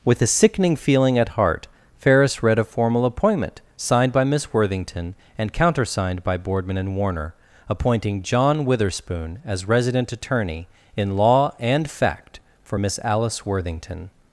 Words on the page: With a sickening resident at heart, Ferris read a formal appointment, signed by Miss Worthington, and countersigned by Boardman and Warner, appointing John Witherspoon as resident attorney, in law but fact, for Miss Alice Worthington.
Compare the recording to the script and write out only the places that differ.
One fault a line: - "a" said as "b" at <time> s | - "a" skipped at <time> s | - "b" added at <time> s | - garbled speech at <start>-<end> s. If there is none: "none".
- "resident" said as "feeling" at 0.8 s
- "but" said as "and" at 11.6 s